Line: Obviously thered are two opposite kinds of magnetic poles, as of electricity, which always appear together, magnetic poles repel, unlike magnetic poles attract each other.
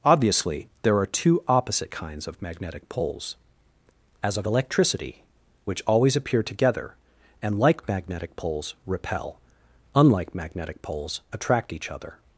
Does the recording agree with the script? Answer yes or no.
no